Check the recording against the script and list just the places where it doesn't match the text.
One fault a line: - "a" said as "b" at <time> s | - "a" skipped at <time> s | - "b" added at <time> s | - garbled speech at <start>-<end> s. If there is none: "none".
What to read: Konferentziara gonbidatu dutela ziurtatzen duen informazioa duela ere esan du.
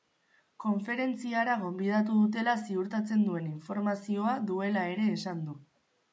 none